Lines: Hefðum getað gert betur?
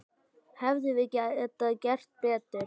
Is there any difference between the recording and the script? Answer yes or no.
yes